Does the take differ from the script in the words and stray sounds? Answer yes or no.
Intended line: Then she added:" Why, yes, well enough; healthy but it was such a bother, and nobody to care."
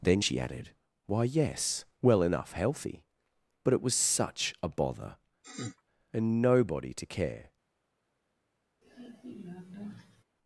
yes